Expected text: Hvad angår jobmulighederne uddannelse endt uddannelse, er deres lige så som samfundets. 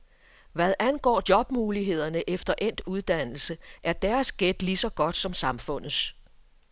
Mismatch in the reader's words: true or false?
true